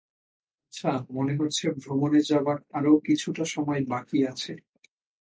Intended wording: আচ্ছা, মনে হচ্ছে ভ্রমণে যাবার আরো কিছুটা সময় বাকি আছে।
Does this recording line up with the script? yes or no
yes